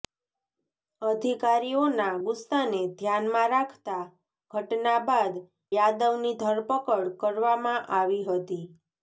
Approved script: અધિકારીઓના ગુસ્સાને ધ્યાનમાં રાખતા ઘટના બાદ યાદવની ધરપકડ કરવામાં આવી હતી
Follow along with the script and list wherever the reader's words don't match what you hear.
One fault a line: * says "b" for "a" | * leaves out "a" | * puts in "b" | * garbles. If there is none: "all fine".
all fine